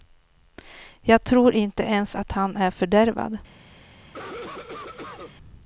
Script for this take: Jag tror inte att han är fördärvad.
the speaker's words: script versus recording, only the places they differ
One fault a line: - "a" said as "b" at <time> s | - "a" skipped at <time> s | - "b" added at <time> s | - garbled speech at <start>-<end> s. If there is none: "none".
- "ens" added at 1.8 s